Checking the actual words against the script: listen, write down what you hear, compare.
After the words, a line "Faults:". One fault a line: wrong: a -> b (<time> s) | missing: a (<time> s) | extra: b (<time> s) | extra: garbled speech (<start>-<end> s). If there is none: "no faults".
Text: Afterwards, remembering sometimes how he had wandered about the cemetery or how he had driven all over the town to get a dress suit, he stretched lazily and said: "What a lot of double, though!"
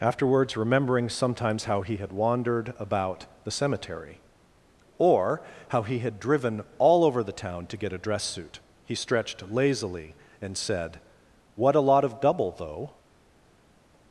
Afterwards, remembering sometimes how he had wandered about the cemetery or how he had driven all over the town to get a dress suit, he stretched lazily and said: "What a lot of double, though!"
Faults:
no faults